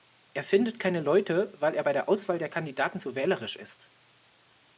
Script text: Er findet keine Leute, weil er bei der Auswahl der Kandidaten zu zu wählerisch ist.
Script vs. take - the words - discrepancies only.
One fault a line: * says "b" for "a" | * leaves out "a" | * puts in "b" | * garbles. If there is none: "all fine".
* leaves out "zu"